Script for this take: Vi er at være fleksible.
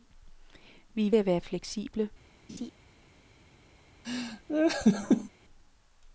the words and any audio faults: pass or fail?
fail